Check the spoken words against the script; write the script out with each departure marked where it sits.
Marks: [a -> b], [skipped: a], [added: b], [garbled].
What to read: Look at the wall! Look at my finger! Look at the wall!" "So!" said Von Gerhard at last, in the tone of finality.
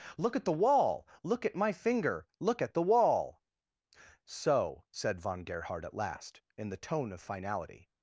Look at the wall! Look at my finger! Look at the wall!" "So!" said Von Gerhard at last, in the tone of finality.